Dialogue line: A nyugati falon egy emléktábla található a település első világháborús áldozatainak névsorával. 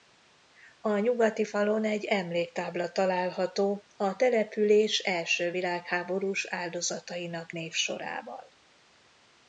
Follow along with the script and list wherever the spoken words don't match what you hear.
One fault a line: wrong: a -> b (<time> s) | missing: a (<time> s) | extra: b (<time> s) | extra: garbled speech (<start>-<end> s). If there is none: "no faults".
no faults